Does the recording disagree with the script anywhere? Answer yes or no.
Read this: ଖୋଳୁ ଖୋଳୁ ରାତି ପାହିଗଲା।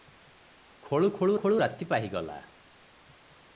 yes